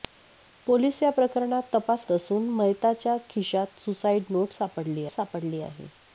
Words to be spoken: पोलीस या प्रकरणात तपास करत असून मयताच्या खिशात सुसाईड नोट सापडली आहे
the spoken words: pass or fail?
fail